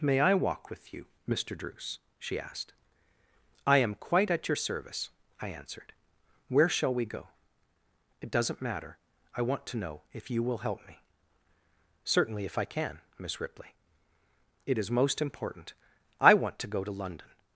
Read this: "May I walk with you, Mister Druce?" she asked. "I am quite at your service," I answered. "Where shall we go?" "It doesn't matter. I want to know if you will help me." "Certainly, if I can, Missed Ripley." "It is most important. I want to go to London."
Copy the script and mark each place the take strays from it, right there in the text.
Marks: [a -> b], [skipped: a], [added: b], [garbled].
"May I walk with you, Mister Druce?" she asked. "I am quite at your service," I answered. "Where shall we go?" "It doesn't matter. I want to know if you will help me." "Certainly, if I can, [Missed -> Miss] Ripley." "It is most important. I want to go to London."